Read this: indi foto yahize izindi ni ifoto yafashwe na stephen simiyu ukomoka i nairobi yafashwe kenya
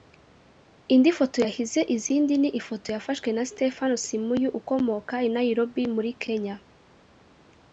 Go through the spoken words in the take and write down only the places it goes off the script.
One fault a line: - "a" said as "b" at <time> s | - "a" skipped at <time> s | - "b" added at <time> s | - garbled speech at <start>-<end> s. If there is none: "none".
- "yafashwe" said as "muri" at 6.0 s